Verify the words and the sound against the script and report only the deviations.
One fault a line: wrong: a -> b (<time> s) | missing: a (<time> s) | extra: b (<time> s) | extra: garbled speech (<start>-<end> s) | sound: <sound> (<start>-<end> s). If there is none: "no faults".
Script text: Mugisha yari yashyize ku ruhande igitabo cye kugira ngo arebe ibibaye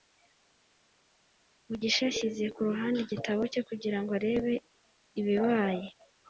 missing: yari (2.0 s)